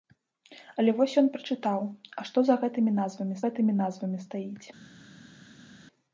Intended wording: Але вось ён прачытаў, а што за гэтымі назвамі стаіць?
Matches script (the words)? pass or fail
fail